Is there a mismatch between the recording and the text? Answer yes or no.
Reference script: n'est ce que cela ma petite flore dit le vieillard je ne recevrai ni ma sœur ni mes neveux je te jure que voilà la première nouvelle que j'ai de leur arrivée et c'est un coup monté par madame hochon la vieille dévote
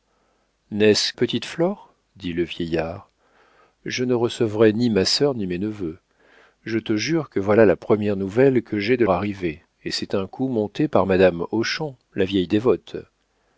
yes